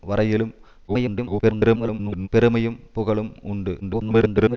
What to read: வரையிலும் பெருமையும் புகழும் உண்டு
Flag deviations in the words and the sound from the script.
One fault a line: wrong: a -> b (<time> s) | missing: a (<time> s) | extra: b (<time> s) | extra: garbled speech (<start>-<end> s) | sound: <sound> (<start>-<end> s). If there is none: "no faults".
extra: garbled speech (0.9-2.3 s)
extra: garbled speech (3.8-4.6 s)